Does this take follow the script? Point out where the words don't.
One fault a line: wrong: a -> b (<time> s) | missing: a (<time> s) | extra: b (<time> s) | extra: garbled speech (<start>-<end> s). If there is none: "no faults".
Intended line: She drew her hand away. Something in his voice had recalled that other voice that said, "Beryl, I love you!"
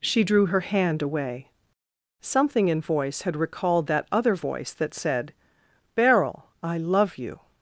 missing: his (2.8 s)